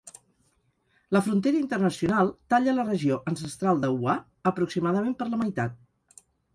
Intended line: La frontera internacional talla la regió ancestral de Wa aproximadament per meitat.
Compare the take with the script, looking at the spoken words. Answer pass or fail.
fail